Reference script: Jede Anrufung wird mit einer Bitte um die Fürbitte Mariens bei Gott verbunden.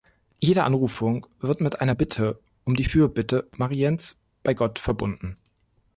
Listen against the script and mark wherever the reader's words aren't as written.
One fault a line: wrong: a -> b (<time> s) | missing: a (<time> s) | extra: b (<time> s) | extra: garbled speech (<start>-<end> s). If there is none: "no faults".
no faults